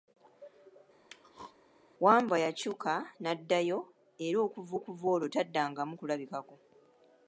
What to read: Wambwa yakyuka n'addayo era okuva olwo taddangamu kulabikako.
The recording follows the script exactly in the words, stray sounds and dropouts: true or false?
false